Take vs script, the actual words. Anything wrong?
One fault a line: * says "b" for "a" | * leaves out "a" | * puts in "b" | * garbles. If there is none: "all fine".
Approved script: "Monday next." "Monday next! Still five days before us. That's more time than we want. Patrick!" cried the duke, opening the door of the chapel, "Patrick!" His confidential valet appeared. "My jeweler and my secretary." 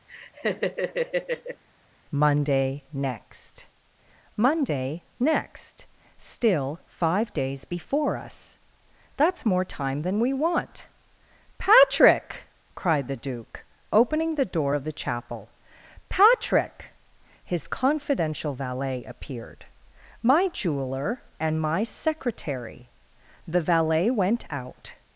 * puts in "The valet went out"